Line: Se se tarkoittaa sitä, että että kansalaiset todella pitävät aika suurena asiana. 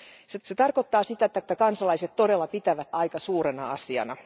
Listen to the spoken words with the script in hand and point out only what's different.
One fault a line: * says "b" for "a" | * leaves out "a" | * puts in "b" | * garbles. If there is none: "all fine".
all fine